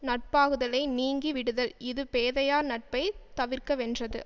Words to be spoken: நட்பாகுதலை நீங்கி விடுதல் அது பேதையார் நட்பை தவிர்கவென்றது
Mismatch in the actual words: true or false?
true